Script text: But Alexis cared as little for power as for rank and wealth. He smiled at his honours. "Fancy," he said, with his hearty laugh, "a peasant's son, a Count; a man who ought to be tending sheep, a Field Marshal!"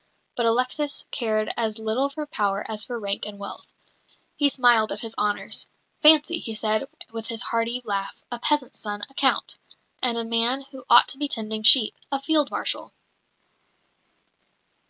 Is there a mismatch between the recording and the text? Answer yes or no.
yes